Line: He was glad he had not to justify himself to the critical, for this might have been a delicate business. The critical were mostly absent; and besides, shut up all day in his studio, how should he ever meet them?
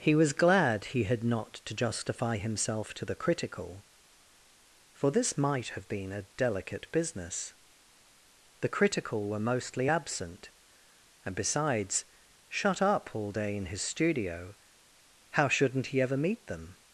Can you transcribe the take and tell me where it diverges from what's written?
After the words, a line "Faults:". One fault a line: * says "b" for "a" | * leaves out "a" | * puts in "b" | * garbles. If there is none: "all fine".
He was glad he had not to justify himself to the critical, for this might have been a delicate business. The critical were mostly absent; and besides, shut up all day in his studio, how shouldn't he ever meet them?
Faults:
* says "shouldn't" for "should"